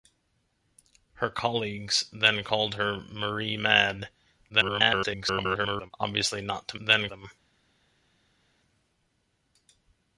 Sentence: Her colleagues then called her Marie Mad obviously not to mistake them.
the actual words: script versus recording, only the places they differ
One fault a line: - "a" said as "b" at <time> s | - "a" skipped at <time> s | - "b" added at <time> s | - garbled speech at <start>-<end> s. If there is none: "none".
- garbled speech at 4.5-5.9 s
- "mistake" said as "then" at 6.8 s